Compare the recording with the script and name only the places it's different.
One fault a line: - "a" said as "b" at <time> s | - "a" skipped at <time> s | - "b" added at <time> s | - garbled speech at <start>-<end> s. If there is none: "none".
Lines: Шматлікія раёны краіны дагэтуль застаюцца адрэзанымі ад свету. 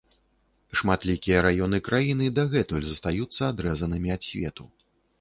none